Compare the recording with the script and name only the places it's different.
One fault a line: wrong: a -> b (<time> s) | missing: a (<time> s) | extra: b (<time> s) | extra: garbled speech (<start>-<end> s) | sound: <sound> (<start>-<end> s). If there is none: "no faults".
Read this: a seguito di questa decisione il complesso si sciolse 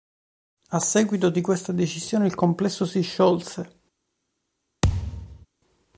sound: thud (4.8-5.5 s)